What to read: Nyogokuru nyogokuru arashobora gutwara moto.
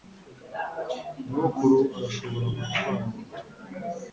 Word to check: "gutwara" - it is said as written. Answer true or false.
true